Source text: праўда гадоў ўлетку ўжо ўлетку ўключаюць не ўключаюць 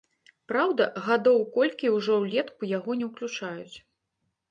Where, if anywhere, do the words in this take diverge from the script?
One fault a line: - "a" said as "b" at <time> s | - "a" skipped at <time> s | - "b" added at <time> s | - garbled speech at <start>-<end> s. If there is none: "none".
- "ўлетку" said as "колькі" at 1.6 s
- "ўключаюць" said as "яго" at 2.8 s